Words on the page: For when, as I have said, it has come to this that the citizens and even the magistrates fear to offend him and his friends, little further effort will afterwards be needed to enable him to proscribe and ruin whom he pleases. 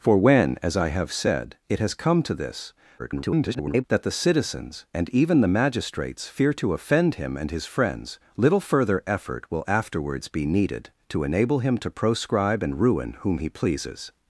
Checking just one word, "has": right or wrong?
right